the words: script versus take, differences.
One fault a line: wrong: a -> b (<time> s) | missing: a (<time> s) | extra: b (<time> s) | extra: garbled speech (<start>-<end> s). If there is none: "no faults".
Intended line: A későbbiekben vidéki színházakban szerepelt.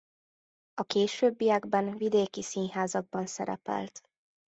no faults